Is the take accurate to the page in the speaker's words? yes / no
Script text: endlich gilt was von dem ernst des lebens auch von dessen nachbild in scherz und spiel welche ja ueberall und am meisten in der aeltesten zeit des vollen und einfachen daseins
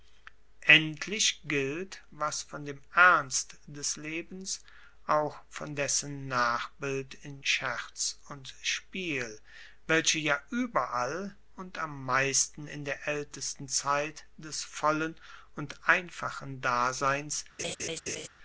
yes